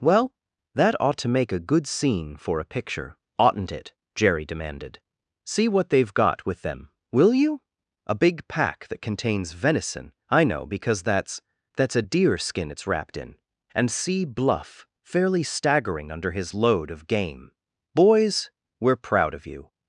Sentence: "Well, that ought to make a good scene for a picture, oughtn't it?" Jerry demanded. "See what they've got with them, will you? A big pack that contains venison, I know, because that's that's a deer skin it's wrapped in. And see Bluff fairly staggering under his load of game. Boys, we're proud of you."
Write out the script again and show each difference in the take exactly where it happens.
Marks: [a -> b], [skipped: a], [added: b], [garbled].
"Well, that ought to make a good scene for a picture, oughtn't it?" Jerry demanded. "See what they've got with them, will you? A big pack that contains venison, I know, because that's that's a deer skin it's wrapped in. And see Bluff fairly staggering under his load of game. Boys, we're proud of you."